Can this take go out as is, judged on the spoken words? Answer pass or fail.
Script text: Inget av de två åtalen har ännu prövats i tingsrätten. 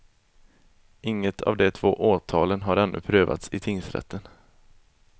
pass